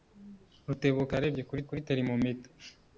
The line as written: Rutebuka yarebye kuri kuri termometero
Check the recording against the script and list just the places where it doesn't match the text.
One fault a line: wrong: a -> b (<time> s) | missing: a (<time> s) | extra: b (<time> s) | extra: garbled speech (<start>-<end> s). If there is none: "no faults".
no faults